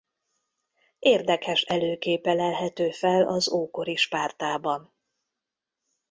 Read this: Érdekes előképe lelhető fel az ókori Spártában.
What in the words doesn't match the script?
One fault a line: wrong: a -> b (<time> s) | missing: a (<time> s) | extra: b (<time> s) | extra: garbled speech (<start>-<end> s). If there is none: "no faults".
no faults